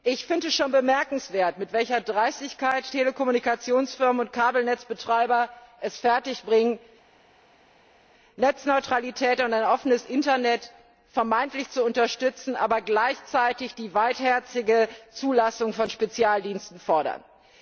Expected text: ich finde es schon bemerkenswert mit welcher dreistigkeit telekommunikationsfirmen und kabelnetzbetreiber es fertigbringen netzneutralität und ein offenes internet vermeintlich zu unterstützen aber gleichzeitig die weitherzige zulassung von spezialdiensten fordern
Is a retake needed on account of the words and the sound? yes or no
no